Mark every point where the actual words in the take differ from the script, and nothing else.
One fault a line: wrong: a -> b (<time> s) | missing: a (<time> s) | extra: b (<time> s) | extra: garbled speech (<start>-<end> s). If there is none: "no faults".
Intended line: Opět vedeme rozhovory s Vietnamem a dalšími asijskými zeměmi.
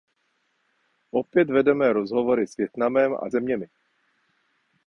missing: dalšími asijskými (3.3 s)